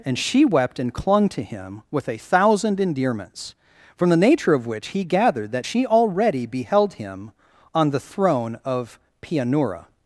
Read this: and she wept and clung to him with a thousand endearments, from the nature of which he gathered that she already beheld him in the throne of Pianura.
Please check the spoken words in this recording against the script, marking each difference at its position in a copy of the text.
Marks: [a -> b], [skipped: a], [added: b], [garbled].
and she wept and clung to him with a thousand endearments, from the nature of which he gathered that she already beheld him [in -> on] the throne of Pianura.